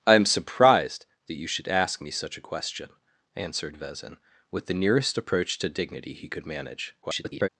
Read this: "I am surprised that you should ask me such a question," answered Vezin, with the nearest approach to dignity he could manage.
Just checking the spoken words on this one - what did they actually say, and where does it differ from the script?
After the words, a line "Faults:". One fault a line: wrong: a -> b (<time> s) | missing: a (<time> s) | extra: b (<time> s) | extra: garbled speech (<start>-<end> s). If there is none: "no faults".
"I am surprised that you should ask me such a question," answered Vezin, with the nearest approach to dignity he could manage. [garbled]
Faults:
extra: garbled speech (7.0-7.5 s)